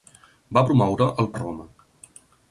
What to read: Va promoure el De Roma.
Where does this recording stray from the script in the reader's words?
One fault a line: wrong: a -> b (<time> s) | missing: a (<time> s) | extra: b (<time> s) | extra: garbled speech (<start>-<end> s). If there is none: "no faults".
no faults